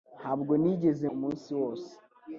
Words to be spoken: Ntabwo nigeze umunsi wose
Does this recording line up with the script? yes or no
yes